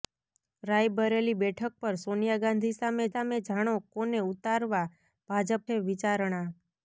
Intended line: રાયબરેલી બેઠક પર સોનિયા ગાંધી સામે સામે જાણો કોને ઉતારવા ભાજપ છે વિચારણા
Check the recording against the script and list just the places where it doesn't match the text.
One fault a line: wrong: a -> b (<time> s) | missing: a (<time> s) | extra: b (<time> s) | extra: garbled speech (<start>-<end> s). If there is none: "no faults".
no faults